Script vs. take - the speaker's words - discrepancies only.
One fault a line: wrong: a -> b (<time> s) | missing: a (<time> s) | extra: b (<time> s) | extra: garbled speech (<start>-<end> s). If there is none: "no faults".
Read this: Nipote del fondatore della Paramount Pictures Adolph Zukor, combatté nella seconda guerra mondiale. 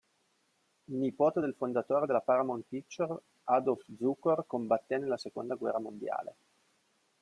no faults